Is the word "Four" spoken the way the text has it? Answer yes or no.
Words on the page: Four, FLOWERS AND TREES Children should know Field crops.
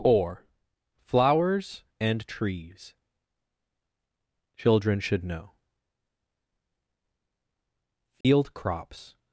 no